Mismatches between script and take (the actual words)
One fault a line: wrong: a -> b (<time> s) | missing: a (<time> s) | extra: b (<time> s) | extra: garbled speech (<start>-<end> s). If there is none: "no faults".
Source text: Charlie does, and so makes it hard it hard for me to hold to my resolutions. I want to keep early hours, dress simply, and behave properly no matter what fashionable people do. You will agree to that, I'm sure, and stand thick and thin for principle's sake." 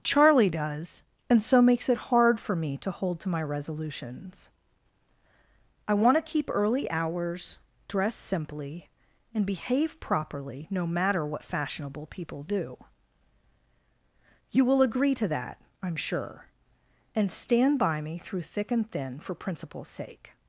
missing: it hard (2.4 s)
extra: by me through (17.8 s)